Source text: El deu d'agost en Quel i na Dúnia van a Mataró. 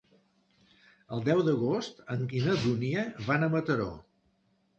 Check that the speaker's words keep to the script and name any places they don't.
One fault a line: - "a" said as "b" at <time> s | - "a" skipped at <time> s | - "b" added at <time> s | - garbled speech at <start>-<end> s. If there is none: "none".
- "Quel" skipped at 2.2 s